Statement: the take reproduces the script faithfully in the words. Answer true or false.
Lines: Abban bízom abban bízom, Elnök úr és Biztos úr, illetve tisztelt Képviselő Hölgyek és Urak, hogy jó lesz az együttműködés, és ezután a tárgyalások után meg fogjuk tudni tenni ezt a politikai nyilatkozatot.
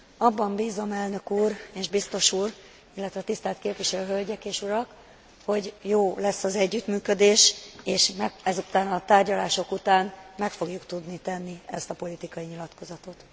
false